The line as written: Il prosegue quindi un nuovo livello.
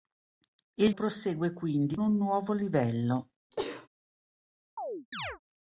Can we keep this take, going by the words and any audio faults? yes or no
no